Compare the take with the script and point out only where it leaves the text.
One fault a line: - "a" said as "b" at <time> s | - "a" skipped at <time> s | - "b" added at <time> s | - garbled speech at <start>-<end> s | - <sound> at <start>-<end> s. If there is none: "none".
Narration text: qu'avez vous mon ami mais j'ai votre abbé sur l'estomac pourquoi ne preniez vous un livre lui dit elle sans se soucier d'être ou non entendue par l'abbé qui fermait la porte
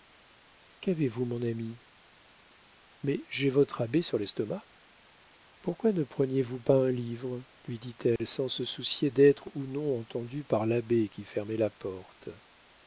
- "pas" added at 6.6 s
- dropout at 8.2-8.2 s